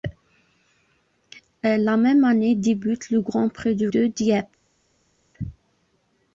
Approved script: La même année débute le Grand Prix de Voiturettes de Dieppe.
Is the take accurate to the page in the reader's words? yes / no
no